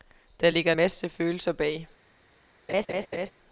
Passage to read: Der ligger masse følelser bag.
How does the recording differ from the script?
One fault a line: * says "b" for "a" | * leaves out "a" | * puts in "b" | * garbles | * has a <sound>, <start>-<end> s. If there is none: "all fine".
* has a laugh, 2.7-3.3 s